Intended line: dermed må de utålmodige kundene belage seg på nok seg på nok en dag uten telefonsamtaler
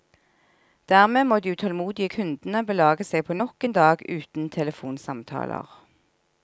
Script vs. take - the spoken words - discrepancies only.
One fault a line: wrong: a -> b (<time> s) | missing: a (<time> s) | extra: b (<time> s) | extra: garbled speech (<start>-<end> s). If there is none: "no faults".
missing: seg på nok (3.7 s)